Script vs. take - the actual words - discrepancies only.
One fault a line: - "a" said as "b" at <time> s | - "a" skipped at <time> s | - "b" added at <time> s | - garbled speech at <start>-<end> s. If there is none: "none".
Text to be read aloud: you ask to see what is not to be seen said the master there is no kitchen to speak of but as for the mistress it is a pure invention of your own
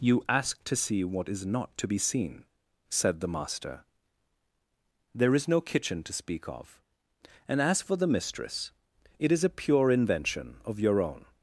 - "but" said as "and" at 7.5 s